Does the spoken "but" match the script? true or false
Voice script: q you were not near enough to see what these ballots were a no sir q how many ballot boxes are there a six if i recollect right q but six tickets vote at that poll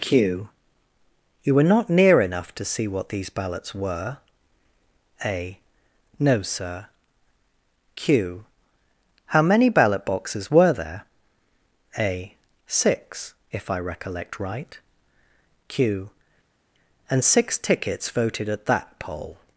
false